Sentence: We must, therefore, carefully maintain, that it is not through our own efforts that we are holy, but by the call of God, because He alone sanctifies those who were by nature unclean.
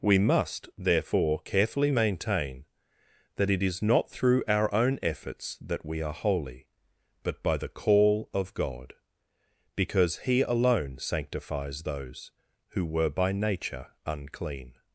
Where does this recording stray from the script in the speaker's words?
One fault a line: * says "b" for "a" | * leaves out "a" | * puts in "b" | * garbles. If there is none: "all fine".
all fine